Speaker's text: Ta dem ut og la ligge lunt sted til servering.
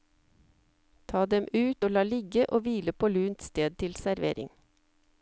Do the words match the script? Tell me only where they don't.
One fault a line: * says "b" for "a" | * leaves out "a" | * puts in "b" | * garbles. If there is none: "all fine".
* puts in "og hvile på"